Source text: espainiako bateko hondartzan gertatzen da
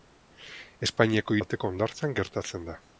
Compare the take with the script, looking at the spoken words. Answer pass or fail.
pass